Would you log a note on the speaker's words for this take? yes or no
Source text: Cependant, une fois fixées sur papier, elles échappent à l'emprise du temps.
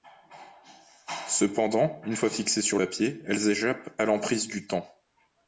no